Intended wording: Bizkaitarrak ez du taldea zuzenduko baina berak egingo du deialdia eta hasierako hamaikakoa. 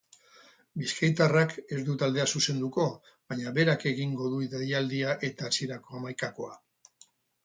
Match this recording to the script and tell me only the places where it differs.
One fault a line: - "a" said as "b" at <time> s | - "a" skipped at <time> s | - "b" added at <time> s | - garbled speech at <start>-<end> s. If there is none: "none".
none